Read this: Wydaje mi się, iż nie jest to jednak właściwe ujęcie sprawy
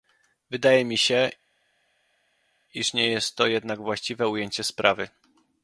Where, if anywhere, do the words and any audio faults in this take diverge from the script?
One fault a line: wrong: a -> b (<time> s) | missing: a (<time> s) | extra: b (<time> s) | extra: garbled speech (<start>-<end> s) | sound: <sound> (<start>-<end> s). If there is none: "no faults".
no faults